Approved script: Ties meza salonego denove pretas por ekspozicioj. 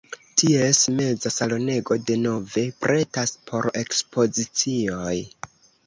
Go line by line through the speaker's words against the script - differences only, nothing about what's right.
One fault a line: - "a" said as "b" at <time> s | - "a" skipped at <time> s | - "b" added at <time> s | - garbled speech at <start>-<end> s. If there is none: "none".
none